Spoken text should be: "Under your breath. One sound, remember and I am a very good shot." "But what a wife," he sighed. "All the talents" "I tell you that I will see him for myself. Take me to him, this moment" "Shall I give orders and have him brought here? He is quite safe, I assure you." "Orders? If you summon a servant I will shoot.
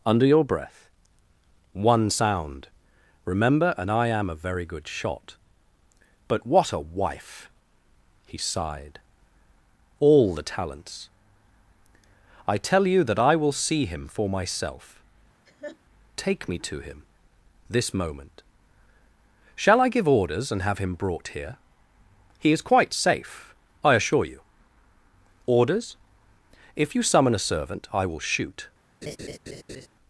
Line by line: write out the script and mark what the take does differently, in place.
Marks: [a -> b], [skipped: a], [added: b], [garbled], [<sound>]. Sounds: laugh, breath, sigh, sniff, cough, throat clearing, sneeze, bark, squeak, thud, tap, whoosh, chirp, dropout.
"Under your breath. One sound, remember and I am a very good shot." "But what a wife," he sighed. "All the talents" "I tell you that I will see him for myself. [laugh] Take me to him, this moment" "Shall I give orders and have him brought here? He is quite safe, I assure you." "Orders? If you summon a servant I will shoot. [laugh]